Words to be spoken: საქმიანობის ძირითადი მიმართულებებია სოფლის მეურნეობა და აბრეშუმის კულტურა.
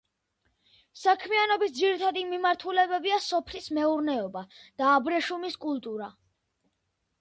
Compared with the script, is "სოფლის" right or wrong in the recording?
right